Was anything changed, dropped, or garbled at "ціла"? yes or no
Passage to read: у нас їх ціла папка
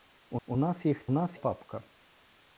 yes